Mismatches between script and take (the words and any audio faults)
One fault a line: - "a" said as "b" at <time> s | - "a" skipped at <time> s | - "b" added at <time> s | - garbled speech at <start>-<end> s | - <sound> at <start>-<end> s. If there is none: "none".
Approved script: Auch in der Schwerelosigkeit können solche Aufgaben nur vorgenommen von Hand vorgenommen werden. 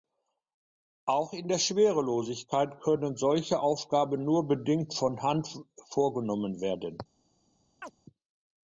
- "vorgenommen" said as "bedingt" at 4.5 s
- chirp at 7.8-7.9 s